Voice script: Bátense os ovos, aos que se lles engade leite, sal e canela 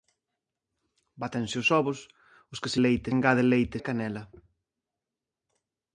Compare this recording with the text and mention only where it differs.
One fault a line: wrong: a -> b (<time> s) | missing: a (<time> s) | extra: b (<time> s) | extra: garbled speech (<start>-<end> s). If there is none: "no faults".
wrong: lles -> leite (2.8 s)
missing: sal (3.8 s)